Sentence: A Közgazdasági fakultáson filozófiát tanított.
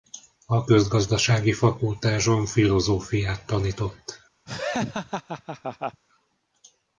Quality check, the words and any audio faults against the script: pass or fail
fail